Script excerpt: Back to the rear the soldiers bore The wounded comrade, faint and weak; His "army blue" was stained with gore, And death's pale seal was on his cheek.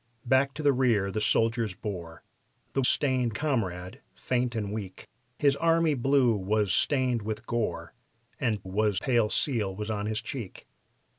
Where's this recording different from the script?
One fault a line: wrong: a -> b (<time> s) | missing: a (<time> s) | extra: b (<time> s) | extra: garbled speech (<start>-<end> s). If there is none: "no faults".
wrong: wounded -> stained (2.8 s)
wrong: death's -> was (8.6 s)